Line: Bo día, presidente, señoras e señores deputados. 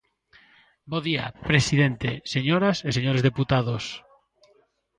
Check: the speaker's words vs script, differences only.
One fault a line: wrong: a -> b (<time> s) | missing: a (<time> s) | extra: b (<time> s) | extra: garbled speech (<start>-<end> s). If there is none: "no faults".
no faults